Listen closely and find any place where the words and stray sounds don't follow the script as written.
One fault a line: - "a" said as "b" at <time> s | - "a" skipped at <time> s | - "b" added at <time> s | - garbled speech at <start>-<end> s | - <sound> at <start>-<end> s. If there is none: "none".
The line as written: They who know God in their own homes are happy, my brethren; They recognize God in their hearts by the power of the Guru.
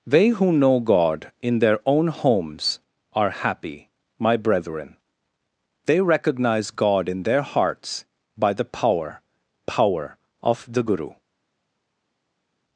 - "power" added at 9.7 s